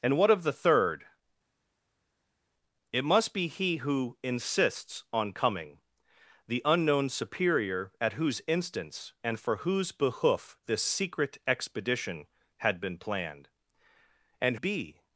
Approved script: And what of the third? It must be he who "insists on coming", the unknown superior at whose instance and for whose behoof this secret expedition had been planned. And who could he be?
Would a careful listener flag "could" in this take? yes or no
yes